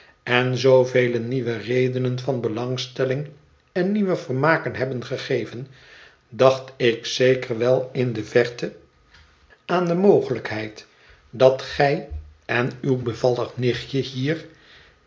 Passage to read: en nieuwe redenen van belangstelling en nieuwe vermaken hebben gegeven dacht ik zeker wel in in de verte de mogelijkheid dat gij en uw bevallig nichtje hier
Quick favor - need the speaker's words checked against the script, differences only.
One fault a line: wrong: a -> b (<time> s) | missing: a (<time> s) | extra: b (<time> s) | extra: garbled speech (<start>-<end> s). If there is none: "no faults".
extra: zoovele (0.6 s)
missing: in (8.1 s)
extra: aan (9.7 s)